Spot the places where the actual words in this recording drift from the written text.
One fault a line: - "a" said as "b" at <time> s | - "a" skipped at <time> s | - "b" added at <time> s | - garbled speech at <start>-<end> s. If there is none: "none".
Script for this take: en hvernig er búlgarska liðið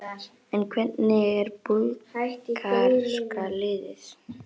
none